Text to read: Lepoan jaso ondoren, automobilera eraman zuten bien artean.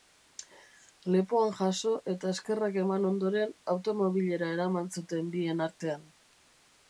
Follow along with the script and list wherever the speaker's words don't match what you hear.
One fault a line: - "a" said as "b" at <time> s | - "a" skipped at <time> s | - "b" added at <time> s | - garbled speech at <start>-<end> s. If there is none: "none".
- "eta eskerrak eman" added at 2.1 s